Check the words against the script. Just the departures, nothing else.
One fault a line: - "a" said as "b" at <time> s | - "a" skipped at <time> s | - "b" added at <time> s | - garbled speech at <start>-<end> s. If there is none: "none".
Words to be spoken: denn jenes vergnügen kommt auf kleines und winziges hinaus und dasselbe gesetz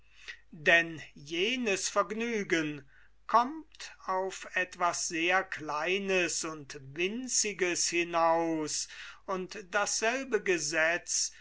- "etwas sehr" added at 4.6 s